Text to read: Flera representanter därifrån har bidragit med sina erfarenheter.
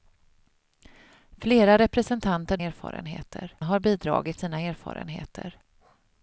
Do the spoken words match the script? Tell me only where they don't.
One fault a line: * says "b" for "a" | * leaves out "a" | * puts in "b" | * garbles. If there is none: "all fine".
* says "erfarenheter" for "därifrån"
* leaves out "med"